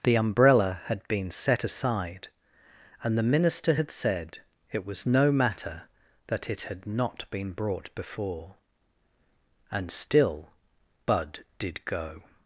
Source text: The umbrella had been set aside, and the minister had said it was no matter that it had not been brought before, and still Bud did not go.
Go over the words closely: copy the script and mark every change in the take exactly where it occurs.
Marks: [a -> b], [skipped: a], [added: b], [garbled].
The umbrella had been set aside, and the minister had said it was no matter that it had not been brought before, and still Bud did [skipped: not] go.